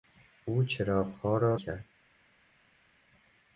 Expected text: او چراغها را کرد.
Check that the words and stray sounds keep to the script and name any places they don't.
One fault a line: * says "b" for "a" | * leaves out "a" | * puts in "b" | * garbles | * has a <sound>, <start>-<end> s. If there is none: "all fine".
all fine